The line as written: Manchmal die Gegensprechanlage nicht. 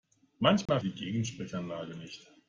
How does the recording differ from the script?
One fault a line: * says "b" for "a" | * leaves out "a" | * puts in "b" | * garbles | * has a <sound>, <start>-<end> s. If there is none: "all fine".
* has a dropout, 0.7-0.7 s